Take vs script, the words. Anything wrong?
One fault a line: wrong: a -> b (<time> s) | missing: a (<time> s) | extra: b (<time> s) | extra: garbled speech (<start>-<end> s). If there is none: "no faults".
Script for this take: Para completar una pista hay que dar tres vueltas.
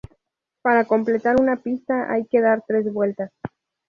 no faults